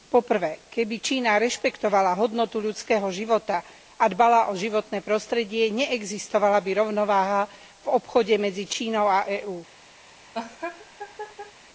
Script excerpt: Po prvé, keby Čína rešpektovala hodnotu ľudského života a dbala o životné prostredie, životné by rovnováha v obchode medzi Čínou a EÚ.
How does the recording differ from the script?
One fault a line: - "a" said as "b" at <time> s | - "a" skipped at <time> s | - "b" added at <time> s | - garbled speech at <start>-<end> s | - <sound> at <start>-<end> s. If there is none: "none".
- "životné" said as "neexistovala" at 5.7 s
- laugh at 10.3-11.5 s